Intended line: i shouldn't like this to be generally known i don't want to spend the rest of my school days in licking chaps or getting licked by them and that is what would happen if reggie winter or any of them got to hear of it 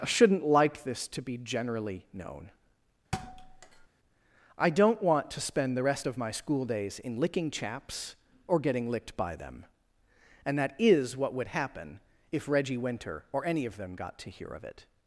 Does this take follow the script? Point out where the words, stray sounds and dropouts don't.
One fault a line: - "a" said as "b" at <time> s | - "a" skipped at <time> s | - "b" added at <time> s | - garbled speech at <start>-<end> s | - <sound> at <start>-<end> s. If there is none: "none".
- thud at 3.1-3.9 s